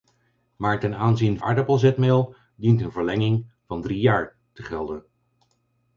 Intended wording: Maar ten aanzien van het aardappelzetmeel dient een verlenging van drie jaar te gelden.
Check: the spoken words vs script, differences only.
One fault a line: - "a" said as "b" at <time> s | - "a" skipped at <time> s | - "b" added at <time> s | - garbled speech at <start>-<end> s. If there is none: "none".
- "van het" skipped at 1.4 s